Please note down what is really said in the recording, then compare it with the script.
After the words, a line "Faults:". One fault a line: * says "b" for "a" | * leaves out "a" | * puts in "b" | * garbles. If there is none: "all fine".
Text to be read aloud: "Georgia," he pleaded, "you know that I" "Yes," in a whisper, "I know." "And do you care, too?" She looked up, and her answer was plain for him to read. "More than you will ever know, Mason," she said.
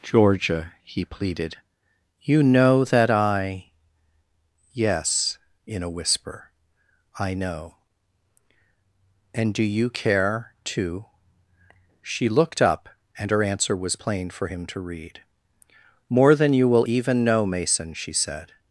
"Georgia," he pleaded, "you know that I" "Yes," in a whisper, "I know." "And do you care, too?" She looked up, and her answer was plain for him to read. "More than you will even know, Mason," she said.
Faults:
* says "even" for "ever"